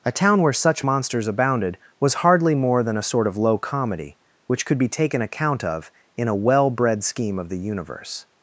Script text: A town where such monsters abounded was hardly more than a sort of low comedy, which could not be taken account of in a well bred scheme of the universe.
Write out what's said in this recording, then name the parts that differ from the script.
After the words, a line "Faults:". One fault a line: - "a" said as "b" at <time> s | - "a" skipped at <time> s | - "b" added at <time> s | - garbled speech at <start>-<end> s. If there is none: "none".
A town where such monsters abounded was hardly more than a sort of low comedy, which could be taken account of in a well bred scheme of the universe.
Faults:
- "not" skipped at 4.8 s